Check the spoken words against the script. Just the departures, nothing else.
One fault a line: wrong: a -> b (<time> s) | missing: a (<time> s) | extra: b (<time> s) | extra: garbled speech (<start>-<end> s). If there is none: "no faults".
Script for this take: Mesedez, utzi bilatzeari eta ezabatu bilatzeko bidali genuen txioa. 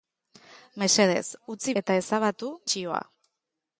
missing: bilatzeari (1.8 s)
missing: bilatzeko bidali genuen (2.5 s)